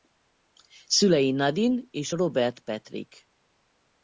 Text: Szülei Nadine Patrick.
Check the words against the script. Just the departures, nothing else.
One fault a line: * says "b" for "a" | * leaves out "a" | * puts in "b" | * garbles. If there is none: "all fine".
* puts in "és Robert"